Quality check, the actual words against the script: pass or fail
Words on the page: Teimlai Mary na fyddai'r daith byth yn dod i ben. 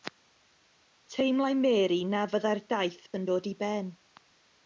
fail